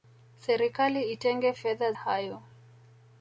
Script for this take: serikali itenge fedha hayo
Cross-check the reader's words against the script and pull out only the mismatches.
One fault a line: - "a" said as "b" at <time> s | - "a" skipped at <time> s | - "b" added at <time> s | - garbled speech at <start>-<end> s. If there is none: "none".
none